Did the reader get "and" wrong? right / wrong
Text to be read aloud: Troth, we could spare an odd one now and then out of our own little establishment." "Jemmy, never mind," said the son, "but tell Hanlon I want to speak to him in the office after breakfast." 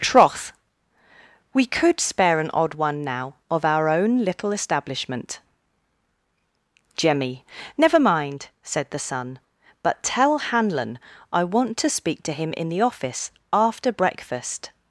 wrong